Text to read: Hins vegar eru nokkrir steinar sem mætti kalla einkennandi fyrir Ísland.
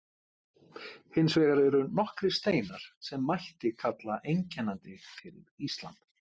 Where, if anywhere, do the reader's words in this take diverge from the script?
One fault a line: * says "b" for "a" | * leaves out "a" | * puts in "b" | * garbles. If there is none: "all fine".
all fine